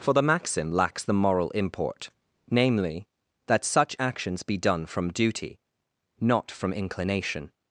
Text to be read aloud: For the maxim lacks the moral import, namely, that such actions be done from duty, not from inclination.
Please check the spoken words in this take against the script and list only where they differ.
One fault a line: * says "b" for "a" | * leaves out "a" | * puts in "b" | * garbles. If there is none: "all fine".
all fine